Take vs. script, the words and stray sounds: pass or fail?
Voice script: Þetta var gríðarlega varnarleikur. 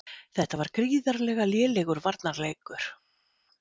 fail